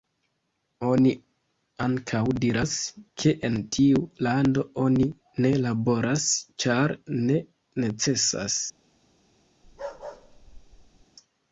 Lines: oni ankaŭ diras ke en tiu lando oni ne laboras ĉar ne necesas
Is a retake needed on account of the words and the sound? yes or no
yes